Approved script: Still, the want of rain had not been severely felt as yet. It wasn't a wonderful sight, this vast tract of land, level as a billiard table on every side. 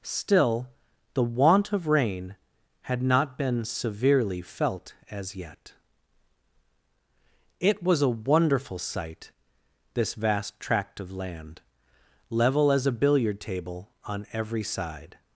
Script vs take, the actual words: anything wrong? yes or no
yes